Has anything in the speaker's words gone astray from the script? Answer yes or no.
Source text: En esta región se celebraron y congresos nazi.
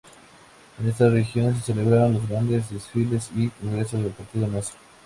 yes